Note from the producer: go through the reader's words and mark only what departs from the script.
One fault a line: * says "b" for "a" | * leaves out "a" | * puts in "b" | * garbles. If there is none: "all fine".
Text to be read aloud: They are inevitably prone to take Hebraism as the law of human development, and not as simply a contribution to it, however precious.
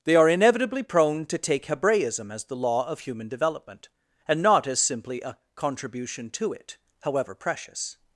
all fine